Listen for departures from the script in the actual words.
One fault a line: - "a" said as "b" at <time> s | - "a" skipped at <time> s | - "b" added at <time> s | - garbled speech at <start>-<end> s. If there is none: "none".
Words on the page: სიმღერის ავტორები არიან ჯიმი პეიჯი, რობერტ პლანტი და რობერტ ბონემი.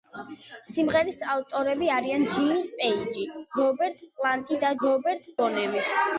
none